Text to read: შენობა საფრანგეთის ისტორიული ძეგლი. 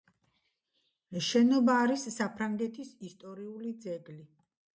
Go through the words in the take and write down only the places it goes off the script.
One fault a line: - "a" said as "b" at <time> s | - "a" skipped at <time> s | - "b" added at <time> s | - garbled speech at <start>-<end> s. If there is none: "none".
- "არის" added at 1.8 s